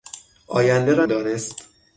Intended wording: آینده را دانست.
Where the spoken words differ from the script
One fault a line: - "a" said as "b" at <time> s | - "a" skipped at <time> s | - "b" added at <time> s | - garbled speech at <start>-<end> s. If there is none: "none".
none